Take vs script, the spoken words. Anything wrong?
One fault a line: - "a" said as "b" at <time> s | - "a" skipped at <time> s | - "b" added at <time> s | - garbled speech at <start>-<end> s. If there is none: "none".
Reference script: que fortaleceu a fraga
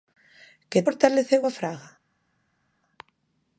none